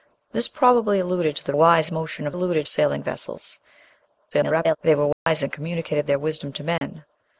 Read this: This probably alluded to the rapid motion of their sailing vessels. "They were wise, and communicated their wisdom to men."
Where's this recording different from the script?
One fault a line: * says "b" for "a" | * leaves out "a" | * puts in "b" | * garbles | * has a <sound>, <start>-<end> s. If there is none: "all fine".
* says "wise" for "rapid"
* says "alluded" for "their"
* garbles
* has a dropout, 5.1-5.3 s
* has a dropout, 6.8-6.8 s